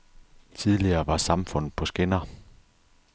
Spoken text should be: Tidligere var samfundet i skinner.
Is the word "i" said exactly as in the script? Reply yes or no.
no